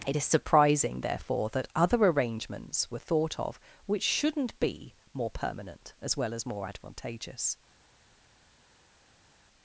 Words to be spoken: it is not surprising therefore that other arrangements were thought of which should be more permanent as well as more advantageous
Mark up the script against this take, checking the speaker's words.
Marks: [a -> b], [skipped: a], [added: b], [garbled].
it is [skipped: not] surprising therefore that other arrangements were thought of which [should -> shouldn't] be more permanent as well as more advantageous